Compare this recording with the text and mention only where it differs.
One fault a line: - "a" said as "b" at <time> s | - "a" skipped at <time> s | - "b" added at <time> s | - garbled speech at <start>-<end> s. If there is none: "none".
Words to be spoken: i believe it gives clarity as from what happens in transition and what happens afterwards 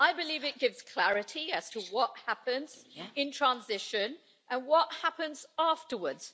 - "from" said as "to" at 1.7 s